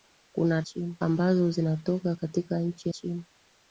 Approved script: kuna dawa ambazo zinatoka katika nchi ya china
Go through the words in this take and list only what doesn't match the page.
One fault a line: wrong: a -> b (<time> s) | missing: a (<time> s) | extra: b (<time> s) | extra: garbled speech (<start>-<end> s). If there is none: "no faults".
wrong: dawa -> china (0.6 s)
missing: ya (2.9 s)